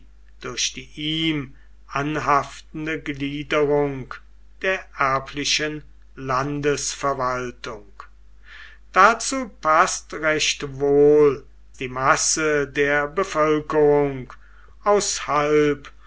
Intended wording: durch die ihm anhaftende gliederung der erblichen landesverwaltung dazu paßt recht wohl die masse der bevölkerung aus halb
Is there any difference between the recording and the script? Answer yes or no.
no